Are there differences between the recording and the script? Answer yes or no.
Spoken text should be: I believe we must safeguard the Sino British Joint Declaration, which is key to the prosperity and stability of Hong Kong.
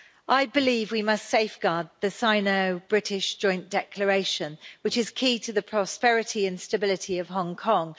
no